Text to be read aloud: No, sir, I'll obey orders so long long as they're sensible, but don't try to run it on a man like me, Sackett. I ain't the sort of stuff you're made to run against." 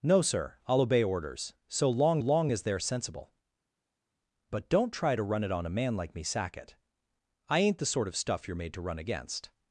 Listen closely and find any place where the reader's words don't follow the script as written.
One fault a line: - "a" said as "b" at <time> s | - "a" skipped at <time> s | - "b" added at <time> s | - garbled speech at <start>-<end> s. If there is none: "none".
none